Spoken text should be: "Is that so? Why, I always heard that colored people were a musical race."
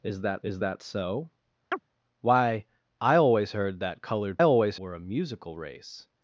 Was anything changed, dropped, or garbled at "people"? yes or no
yes